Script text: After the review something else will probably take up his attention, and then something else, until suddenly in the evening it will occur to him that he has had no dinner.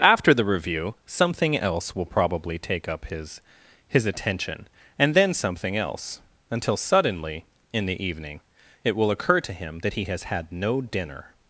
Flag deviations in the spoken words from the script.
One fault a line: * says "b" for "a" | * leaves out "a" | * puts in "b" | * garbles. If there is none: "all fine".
* puts in "his"